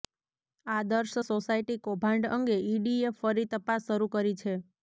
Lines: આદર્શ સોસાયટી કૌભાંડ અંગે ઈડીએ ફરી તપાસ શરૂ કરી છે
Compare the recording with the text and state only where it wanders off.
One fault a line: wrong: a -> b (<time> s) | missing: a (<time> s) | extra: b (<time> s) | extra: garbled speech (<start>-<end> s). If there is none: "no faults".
no faults